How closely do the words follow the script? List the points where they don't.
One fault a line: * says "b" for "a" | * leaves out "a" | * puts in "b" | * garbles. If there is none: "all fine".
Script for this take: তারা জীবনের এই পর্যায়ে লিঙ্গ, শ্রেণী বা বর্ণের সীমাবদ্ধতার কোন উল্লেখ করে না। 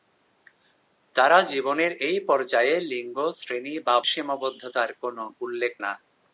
* leaves out "বর্ণের"
* leaves out "করে"